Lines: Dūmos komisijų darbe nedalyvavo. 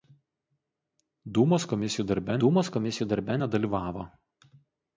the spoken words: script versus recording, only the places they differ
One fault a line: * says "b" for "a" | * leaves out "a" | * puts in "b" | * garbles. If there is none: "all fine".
* puts in "dūmos komisijų darbe"